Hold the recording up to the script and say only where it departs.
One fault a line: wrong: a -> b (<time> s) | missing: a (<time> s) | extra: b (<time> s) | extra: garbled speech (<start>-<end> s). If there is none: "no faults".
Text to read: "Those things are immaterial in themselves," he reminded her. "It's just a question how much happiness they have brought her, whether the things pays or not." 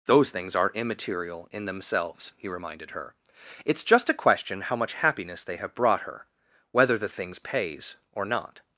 no faults